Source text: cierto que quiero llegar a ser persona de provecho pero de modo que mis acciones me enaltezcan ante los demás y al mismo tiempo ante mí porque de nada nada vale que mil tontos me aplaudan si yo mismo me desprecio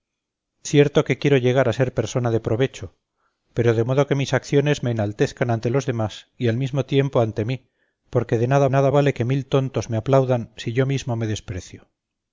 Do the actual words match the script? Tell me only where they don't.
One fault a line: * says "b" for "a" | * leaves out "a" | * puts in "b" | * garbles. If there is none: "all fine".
all fine